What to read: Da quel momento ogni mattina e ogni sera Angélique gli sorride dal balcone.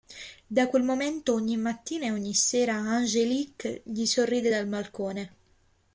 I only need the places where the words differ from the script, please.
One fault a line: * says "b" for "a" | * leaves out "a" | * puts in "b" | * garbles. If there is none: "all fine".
all fine